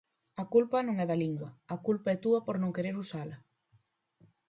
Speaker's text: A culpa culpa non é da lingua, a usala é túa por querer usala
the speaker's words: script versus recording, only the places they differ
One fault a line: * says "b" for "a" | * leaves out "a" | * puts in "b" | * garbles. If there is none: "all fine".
* leaves out "culpa"
* says "culpa" for "usala"
* puts in "non"